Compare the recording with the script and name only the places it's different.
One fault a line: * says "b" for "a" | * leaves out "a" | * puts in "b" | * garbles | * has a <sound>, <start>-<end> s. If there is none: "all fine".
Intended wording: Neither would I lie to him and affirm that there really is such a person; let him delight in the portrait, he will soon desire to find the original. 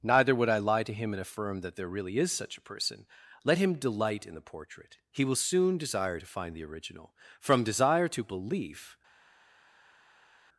* puts in "From desire to belief"